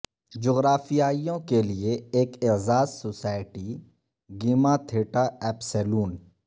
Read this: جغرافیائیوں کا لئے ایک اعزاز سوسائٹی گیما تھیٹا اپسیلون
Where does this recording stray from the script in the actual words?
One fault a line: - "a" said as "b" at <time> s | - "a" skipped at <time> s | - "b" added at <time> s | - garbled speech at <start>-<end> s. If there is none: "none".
- "کا" said as "کے" at 1.5 s